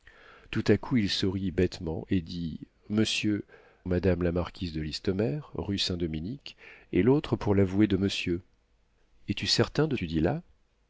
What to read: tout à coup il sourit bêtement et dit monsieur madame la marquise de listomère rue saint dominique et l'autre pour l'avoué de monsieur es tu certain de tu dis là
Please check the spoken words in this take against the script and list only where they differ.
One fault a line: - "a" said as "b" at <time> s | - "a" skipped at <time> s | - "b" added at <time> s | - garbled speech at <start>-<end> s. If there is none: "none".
none